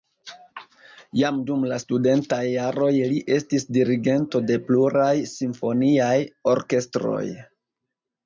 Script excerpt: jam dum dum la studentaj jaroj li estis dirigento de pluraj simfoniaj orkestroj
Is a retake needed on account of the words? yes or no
yes